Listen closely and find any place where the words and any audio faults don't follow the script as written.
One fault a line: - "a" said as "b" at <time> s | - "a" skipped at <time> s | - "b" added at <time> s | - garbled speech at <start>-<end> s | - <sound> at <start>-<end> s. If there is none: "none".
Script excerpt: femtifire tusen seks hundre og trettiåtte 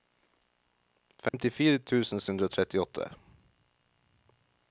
- dropout at 1.3-1.3 s
- "seks" skipped at 2.2 s